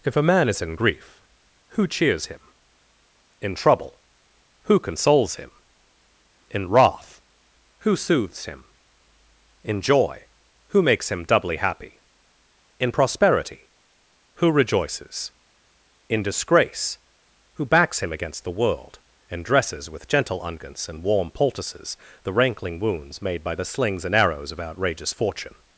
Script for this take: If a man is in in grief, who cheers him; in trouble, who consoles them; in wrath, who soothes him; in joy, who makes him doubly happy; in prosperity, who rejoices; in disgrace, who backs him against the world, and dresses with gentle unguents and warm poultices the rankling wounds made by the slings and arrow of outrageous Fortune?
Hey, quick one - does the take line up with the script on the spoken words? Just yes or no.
no